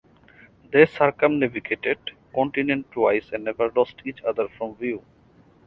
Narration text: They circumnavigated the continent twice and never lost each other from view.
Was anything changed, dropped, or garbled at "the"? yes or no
yes